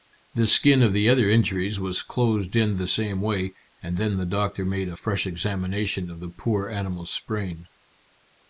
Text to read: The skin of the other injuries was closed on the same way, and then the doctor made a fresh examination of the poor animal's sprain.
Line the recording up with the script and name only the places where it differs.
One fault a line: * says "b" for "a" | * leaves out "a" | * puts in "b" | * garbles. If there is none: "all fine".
* says "in" for "on"